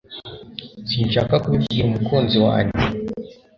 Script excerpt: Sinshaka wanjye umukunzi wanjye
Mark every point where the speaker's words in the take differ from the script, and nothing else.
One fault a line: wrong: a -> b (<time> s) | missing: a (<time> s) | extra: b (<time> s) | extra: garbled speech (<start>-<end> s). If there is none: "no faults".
wrong: wanjye -> kubibwira (1.4 s)